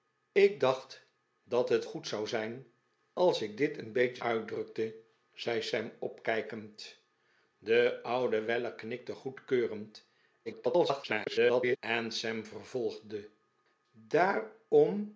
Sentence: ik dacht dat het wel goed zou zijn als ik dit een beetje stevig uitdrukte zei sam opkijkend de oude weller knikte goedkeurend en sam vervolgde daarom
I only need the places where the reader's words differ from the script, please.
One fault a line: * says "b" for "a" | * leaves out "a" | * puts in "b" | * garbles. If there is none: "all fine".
* leaves out "wel"
* leaves out "stevig"
* garbles